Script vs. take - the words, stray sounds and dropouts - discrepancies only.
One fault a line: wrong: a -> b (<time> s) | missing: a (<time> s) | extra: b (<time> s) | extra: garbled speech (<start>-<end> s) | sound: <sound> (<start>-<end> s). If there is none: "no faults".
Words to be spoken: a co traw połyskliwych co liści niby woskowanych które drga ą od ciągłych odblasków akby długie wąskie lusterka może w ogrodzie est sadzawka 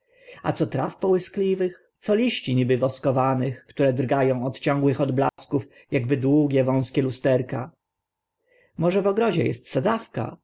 sound: dropout (5.3-5.4 s)